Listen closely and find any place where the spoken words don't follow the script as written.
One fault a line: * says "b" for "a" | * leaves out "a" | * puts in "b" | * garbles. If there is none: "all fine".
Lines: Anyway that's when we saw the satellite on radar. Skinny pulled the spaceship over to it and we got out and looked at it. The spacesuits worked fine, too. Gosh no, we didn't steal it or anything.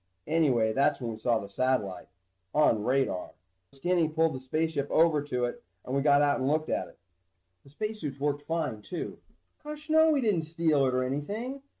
all fine